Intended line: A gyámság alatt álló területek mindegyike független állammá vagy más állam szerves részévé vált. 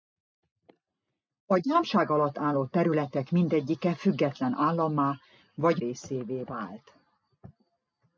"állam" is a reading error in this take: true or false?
true